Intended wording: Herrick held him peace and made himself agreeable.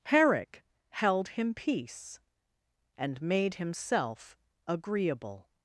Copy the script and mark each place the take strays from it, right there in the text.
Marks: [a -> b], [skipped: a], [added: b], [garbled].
Herrick held him peace and made himself agreeable.